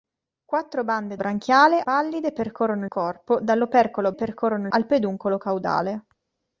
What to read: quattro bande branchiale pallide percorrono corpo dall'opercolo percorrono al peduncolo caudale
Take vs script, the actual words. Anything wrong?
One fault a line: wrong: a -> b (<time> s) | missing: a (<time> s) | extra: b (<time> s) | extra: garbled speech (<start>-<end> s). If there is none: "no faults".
no faults